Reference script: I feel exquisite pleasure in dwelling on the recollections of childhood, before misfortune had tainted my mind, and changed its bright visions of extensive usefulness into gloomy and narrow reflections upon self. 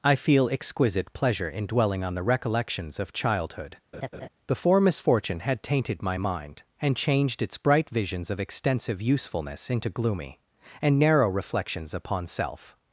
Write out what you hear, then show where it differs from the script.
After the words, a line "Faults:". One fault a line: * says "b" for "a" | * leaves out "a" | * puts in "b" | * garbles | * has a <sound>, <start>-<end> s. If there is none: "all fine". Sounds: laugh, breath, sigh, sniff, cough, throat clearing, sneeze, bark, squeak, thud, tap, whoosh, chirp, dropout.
I feel exquisite pleasure in dwelling on the recollections of childhood, before misfortune had tainted my mind, and changed its bright visions of extensive usefulness into gloomy and narrow reflections upon self.
Faults:
* has a laugh, 3.9-4.3 s